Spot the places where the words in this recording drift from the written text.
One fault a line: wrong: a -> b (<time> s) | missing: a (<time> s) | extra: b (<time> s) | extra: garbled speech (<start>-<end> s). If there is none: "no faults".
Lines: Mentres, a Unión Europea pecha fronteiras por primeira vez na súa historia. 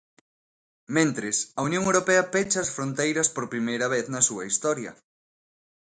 extra: as (2.6 s)